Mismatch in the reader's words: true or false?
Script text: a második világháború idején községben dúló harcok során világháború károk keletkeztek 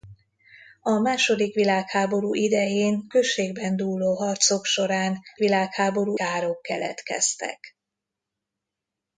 false